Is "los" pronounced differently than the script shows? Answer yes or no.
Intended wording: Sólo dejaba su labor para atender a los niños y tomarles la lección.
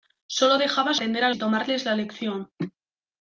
yes